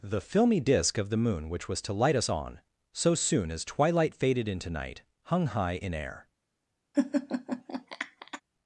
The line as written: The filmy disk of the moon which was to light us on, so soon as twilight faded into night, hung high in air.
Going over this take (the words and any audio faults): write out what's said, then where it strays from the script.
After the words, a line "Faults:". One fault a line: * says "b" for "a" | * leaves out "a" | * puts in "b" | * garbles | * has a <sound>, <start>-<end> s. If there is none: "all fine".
The filmy disk of the moon which was to light us on, so soon as twilight faded into night, hung high in air.
Faults:
* has a laugh, 6.9-8.4 s